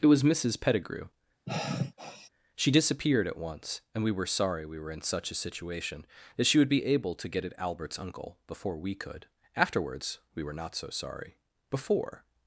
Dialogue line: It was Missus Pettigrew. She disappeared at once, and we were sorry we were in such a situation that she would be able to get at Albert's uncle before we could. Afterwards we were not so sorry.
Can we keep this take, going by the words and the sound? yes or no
no